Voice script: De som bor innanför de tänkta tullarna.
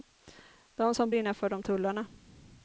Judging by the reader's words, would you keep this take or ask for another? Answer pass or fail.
fail